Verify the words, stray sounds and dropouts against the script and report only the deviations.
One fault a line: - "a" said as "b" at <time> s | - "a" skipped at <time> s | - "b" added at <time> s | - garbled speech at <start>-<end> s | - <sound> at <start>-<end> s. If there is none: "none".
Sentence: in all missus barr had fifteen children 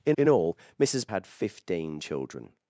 - "in" added at 0.1 s
- "barr" skipped at 1.1 s